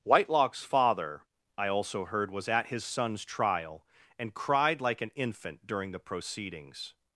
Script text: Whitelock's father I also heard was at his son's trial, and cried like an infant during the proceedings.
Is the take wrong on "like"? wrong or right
right